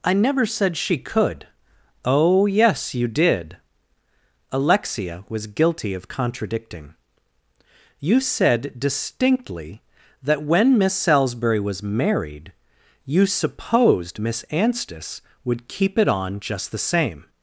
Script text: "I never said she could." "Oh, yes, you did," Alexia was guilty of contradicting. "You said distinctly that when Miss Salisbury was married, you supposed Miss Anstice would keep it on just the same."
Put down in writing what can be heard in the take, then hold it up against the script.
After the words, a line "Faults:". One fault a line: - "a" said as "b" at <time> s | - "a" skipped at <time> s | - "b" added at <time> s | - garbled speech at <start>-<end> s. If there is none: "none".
"I never said she could." "Oh, yes, you did," Alexia was guilty of contradicting. "You said distinctly that when Miss Salisbury was married, you supposed Miss Anstice would keep it on just the same."
Faults:
none